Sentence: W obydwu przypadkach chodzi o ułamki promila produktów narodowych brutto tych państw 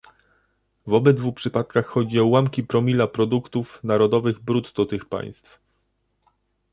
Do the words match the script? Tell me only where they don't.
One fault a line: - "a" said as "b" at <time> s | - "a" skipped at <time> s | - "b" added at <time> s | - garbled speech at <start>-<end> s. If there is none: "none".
none